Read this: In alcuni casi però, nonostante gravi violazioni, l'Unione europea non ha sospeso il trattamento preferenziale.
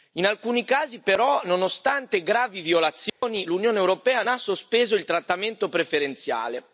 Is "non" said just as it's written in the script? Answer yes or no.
no